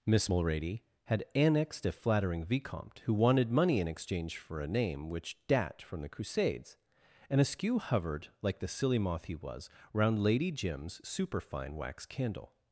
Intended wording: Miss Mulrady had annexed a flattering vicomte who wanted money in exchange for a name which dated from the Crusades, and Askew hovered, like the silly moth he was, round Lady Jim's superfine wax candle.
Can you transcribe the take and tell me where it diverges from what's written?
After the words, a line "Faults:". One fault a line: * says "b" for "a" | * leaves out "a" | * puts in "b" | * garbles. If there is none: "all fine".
Miss Mulrady had annexed a flattering vicomte who wanted money in exchange for a name which dat from the Crusades, and Askew hovered, like the silly moth he was, round Lady Jim's superfine wax candle.
Faults:
* says "dat" for "dated"